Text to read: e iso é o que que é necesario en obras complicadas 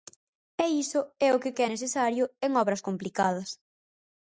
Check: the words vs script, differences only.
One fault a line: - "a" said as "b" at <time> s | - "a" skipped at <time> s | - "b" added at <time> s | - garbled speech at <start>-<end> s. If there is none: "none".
none